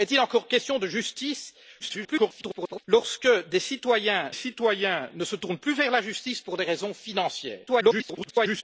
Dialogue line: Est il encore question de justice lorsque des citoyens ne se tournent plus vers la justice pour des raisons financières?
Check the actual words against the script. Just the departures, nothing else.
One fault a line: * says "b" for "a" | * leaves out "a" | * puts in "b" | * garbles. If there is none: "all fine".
* garbles
* puts in "citoyens"
* garbles